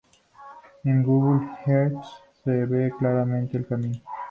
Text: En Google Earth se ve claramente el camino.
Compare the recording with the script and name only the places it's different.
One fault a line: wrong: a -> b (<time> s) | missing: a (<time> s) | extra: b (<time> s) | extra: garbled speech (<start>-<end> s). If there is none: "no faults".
no faults